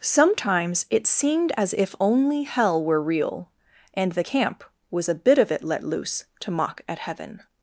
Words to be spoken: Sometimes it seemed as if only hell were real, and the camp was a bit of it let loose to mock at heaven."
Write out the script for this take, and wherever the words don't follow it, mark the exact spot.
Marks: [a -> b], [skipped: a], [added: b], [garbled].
Sometimes it seemed as if only hell were real, and the camp was a bit of it let loose to mock at heaven."